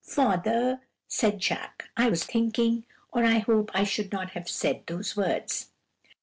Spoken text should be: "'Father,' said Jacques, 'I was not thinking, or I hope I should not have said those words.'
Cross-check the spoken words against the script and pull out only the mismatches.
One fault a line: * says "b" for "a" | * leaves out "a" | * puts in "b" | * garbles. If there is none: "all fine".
* leaves out "not"